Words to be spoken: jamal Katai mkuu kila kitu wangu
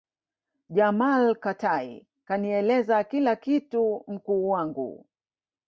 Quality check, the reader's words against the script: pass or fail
fail